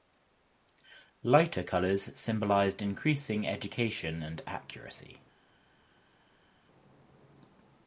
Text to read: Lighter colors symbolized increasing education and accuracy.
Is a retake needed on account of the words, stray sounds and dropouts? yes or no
no